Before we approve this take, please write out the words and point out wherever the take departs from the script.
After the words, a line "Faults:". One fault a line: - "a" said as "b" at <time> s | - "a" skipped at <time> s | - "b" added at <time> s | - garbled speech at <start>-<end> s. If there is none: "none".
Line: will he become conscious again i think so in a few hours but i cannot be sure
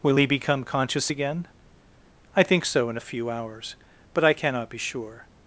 will he become conscious again i think so in a few hours but i cannot be sure
Faults:
none